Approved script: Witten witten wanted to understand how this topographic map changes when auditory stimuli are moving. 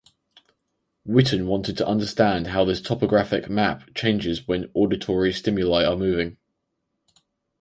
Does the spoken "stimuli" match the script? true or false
true